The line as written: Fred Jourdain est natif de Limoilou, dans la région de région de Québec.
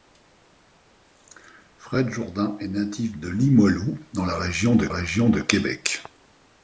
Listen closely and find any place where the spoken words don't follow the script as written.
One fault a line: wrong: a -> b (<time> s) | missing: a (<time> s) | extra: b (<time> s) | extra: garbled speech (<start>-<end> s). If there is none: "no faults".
no faults